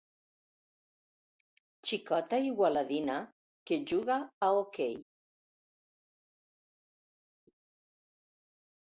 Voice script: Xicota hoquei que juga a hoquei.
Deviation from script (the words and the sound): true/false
true